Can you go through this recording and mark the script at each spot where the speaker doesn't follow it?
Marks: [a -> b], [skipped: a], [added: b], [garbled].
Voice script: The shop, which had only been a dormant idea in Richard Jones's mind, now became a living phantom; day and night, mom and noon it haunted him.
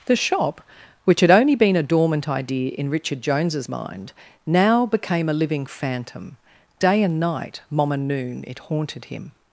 The shop, which had only been a dormant idea in Richard Jones's mind, now became a living phantom; day and night, mom and noon it haunted him.